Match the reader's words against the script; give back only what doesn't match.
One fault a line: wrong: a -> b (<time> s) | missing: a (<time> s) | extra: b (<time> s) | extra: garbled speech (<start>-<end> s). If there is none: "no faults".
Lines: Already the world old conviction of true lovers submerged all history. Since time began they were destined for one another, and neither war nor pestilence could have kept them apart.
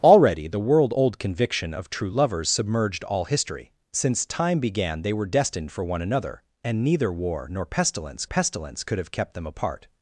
extra: pestilence (8.2 s)